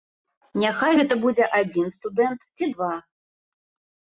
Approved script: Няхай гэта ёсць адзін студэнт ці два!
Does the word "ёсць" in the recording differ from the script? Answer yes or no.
yes